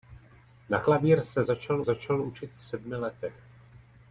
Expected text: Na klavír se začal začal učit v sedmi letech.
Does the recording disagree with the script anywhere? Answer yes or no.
no